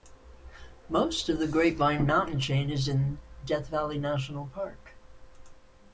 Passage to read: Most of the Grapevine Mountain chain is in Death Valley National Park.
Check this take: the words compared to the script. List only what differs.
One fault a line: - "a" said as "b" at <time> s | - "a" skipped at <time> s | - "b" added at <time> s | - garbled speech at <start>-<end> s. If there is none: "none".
none